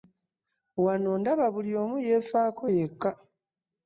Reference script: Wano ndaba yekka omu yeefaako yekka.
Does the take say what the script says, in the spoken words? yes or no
no